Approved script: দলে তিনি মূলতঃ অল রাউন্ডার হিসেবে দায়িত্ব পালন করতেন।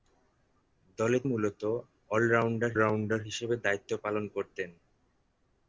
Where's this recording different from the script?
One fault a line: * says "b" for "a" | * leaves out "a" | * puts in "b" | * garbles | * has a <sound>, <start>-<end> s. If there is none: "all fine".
* leaves out "তিনি"
* puts in "রাউন্ডার"